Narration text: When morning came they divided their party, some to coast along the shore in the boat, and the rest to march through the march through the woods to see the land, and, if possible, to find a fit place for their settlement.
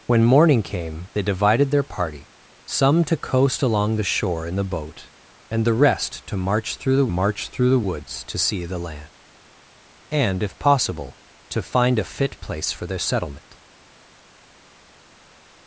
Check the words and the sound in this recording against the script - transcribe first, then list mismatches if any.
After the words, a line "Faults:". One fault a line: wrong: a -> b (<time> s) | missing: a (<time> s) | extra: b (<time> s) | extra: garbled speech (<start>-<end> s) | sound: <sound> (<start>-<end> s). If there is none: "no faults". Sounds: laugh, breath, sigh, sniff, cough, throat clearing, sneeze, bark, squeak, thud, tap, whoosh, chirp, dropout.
When morning came they divided their party, some to coast along the shore in the boat, and the rest to march through the march through the woods to see the land, and, if possible, to find a fit place for their settlement.
Faults:
no faults